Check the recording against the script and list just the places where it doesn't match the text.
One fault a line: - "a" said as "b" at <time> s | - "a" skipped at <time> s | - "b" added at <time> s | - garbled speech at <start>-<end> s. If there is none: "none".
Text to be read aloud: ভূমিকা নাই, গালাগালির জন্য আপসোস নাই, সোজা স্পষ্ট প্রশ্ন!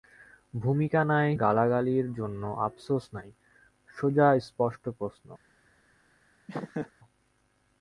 none